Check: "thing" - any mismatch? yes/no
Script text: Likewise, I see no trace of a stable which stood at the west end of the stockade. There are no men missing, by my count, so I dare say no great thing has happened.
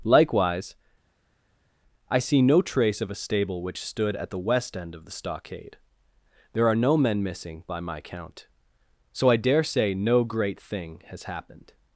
no